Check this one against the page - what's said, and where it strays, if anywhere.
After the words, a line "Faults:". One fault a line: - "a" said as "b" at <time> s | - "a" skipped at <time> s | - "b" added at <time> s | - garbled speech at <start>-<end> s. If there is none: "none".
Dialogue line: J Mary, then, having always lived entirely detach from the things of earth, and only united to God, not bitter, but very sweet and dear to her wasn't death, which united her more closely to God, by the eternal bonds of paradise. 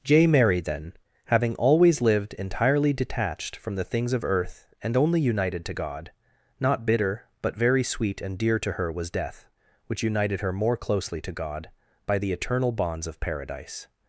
J Mary, then, having always lived entirely detached from the things of earth, and only united to God, not bitter, but very sweet and dear to her was death, which united her more closely to God, by the eternal bonds of paradise.
Faults:
- "detach" said as "detached" at 2.9 s
- "wasn't" said as "was" at 8.9 s